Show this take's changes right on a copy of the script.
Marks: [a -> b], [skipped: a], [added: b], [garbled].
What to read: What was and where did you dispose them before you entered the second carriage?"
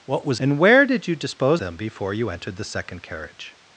What was and where did you dispose them before you entered the second carriage?"